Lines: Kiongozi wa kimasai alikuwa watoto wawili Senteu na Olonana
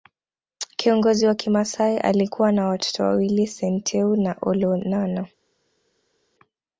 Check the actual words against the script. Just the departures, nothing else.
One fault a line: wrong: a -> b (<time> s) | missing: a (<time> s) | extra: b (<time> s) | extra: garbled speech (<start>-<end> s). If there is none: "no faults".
extra: na (2.5 s)